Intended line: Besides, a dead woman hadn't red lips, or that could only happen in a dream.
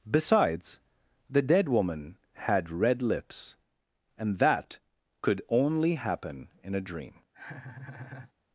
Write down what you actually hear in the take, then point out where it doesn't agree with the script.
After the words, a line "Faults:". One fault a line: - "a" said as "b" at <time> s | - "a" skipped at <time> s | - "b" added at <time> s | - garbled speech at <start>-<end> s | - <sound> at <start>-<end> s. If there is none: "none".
Besides, the dead woman had red lips, and that could only happen in a dream.
Faults:
- "a" said as "the" at 1.3 s
- "hadn't" said as "had" at 2.3 s
- "or" said as "and" at 4.2 s
- laugh at 7.3-8.3 s